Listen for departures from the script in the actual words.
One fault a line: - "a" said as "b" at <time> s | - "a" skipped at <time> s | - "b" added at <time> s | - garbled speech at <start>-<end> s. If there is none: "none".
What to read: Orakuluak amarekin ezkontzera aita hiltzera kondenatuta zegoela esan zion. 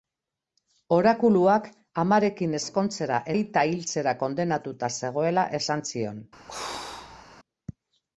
none